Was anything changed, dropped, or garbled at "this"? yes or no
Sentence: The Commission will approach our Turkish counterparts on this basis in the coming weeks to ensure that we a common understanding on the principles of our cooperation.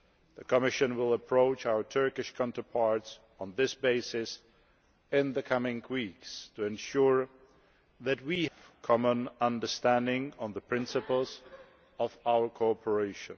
no